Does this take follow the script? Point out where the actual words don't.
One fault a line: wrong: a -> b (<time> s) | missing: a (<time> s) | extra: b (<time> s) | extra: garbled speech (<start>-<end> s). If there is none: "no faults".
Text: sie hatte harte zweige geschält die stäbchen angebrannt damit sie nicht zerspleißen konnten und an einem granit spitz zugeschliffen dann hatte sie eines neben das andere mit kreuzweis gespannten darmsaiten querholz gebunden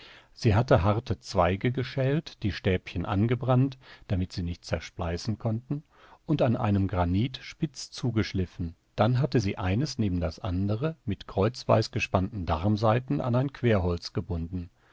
extra: an ein (13.2 s)